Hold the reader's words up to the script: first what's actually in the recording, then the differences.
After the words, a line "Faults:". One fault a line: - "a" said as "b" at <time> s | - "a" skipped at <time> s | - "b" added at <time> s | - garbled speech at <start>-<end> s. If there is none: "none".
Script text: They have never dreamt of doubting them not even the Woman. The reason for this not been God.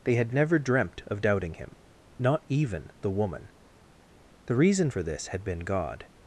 They had never dreamt of doubting him not even the Woman. The reason for this had been God.
Faults:
- "have" said as "had" at 0.1 s
- "them" said as "him" at 1.6 s
- "not" said as "had" at 5.3 s